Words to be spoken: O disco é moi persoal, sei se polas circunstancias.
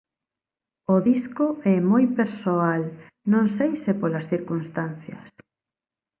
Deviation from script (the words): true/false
true